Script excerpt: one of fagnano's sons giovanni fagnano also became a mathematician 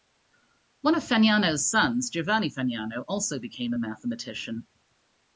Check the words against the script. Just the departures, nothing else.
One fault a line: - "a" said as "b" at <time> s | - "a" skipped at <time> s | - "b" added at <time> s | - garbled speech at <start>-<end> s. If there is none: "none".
none